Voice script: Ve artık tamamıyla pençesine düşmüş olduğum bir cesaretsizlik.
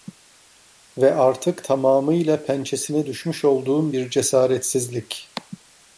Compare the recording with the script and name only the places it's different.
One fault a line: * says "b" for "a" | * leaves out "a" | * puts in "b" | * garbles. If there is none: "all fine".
all fine